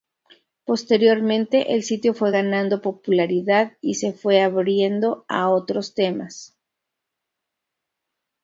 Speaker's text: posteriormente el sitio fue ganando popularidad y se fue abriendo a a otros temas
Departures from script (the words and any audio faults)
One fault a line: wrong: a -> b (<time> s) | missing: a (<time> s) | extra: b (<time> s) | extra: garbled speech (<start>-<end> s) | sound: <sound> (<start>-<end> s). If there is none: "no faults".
missing: a (5.5 s)